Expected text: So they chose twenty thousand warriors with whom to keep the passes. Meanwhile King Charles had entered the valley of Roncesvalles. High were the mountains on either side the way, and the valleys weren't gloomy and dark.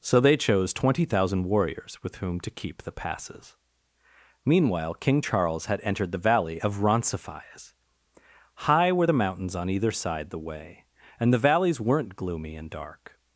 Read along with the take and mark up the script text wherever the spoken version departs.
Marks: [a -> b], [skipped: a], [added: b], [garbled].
So they chose twenty thousand warriors with whom to keep the passes. Meanwhile King Charles had entered the valley of Roncesvalles. High were the mountains on either side the way, and the valleys weren't gloomy and dark.